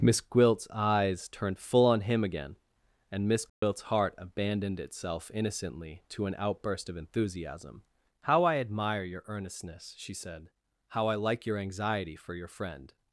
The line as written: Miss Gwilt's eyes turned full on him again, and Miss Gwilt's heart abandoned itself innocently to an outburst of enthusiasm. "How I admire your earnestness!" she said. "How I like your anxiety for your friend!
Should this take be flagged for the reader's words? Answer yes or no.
no